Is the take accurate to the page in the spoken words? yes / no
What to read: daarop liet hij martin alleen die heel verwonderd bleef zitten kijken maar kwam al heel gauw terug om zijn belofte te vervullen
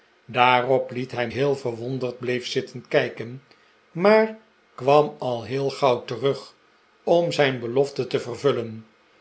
no